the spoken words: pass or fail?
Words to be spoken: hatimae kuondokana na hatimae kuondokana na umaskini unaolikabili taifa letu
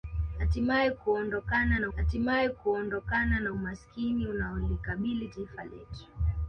pass